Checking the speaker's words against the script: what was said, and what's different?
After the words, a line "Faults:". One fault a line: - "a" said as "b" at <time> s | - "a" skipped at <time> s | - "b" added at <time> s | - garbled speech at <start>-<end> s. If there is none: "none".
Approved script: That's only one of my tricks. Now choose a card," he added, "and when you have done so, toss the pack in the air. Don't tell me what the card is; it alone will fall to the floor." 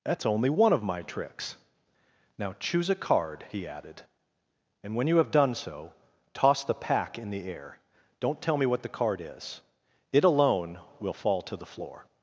That's only one of my tricks. Now choose a card," he added, "and when you have done so, toss the pack in the air. Don't tell me what the card is; it alone will fall to the floor."
Faults:
none